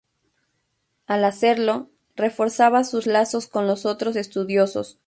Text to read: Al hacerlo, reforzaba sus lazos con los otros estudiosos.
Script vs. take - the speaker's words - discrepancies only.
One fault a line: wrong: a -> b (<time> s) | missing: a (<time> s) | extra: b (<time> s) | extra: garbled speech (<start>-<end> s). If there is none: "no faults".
no faults